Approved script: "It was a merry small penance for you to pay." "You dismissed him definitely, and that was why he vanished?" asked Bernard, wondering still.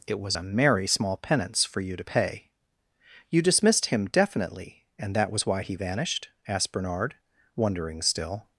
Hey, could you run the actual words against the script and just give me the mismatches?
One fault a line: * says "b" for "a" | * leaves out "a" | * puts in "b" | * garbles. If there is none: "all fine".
all fine